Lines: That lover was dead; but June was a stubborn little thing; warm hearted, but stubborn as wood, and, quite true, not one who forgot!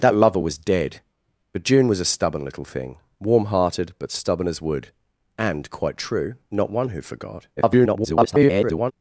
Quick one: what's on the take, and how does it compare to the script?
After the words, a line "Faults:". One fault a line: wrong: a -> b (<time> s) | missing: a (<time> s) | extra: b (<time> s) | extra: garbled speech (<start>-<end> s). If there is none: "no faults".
That lover was dead; but June was a stubborn little thing; warm hearted, but stubborn as wood, and, quite true, not one who forgot! [garbled]
Faults:
extra: garbled speech (7.6-8.9 s)